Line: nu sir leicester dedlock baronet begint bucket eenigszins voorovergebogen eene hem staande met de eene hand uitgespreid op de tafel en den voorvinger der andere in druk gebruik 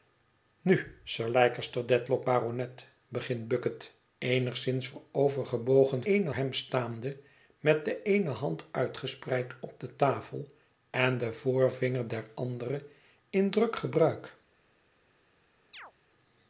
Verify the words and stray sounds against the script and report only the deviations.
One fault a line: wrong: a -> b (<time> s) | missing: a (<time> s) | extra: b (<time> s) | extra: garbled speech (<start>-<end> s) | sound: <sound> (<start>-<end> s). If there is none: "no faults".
sound: chirp (15.7-15.9 s)